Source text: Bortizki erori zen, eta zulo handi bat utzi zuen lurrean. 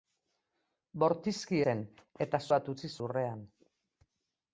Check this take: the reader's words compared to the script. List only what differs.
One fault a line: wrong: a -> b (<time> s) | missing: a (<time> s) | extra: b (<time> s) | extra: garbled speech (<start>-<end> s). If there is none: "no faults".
missing: erori (1.6 s)
missing: zulo handi (2.4 s)
missing: zuen (2.9 s)